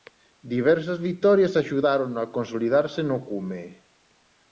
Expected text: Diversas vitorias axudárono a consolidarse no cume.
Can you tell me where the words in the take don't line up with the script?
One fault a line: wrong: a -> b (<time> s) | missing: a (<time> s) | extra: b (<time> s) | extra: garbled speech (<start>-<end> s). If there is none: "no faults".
no faults